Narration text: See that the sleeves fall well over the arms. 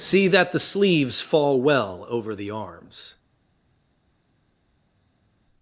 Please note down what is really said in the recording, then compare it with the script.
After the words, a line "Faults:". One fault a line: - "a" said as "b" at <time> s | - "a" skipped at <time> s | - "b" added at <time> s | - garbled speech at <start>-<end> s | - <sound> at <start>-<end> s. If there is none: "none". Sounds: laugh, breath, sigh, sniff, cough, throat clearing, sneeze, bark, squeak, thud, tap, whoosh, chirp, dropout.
See that the sleeves fall well over the arms.
Faults:
none